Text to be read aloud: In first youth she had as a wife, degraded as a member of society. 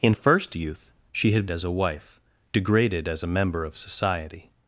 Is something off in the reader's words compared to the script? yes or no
no